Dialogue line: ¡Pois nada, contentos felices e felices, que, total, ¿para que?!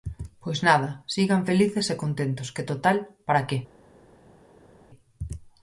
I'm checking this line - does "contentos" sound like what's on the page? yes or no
no